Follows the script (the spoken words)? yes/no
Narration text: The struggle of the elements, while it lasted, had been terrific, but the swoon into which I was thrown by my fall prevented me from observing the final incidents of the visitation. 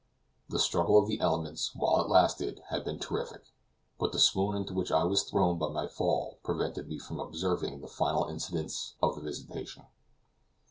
yes